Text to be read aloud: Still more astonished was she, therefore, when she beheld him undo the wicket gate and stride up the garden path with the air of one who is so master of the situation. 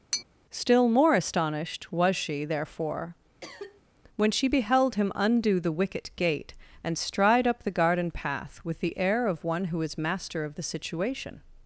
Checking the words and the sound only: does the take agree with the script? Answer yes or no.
no